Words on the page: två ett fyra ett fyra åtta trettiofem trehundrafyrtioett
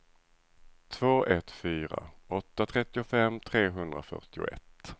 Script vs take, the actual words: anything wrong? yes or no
yes